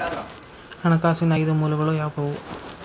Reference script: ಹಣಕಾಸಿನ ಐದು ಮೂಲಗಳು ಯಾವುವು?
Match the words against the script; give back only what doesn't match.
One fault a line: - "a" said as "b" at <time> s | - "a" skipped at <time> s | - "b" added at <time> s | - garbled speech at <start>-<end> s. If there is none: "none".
none